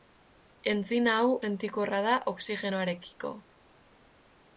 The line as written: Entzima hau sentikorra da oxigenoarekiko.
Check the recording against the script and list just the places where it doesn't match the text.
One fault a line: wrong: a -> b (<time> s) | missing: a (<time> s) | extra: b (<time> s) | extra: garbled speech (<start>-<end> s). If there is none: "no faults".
no faults